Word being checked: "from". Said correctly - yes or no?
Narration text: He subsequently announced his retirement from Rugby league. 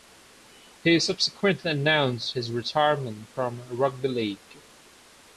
yes